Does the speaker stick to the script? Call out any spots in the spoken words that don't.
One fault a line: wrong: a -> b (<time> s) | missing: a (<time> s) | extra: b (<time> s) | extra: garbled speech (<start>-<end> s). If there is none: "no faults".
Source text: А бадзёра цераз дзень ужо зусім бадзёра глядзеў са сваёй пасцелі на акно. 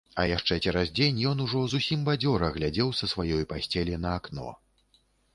wrong: бадзёра -> яшчэ (0.2 s)
extra: ён (1.3 s)